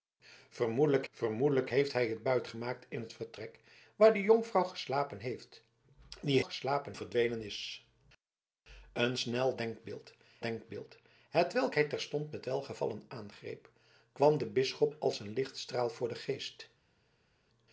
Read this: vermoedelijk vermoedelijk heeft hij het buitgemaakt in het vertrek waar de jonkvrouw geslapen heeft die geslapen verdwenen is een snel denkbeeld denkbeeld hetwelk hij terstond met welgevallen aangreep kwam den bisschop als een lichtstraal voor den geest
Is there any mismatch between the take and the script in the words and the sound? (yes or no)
no